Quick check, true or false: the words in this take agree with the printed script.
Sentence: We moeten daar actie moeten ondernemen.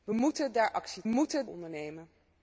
true